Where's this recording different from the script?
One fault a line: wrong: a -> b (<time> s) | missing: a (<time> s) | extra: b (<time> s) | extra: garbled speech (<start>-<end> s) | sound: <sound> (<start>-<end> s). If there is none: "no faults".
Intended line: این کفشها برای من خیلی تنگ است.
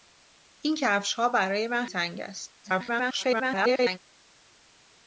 missing: خیلی (1.9 s)
extra: garbled speech (2.6-4.0 s)